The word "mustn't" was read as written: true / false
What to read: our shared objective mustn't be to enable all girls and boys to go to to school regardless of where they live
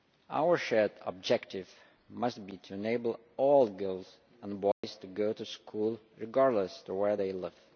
false